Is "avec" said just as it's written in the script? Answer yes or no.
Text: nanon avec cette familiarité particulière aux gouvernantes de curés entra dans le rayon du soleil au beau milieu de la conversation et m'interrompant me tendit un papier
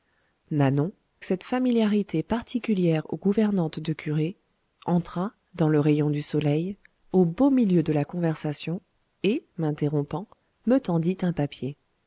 no